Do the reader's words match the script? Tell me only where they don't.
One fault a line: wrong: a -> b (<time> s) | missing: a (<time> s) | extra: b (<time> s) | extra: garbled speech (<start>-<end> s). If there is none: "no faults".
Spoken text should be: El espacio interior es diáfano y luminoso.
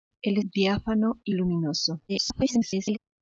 missing: espacio interior es (0.4 s)
extra: garbled speech (2.1-3.0 s)